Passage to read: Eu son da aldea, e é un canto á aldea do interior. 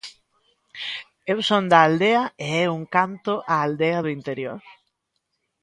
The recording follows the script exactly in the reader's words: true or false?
true